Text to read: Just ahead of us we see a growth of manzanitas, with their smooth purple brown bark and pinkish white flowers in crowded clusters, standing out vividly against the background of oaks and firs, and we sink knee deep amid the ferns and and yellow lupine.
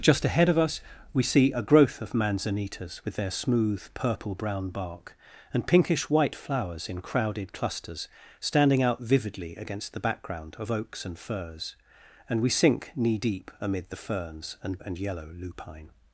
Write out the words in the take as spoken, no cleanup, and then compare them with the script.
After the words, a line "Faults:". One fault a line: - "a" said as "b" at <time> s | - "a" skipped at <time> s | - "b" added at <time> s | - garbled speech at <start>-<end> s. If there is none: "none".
Just ahead of us we see a growth of manzanitas, with their smooth purple brown bark and pinkish white flowers in crowded clusters, standing out vividly against the background of oaks and firs, and we sink knee deep amid the ferns and and yellow lupine.
Faults:
none